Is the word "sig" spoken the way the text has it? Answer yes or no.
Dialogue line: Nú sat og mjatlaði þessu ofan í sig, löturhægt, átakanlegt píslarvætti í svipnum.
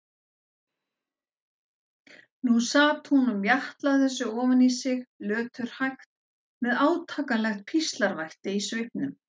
yes